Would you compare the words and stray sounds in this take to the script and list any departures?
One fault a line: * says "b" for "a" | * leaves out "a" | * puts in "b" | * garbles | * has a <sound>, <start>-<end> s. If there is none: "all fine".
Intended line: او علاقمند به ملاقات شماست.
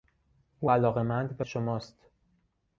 * leaves out "ملاقات"